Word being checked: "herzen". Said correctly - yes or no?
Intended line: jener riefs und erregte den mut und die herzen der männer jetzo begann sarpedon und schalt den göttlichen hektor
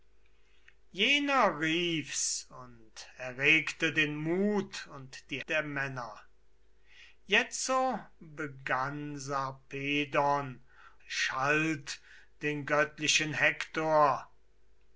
no